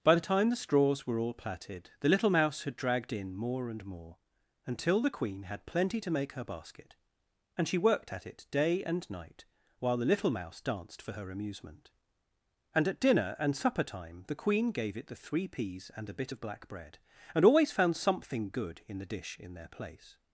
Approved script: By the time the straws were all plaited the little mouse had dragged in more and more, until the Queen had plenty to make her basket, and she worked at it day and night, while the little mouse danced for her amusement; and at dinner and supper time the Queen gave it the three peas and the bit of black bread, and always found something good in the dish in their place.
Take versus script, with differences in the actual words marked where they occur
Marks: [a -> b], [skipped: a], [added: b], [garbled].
By the time the straws were all plaited the little mouse had dragged in more and more, until the Queen had plenty to make her basket, and she worked at it day and night, while the little mouse danced for her amusement; and at dinner and supper time the Queen gave it the three peas and [the -> a] bit of black bread, and always found something good in the dish in their place.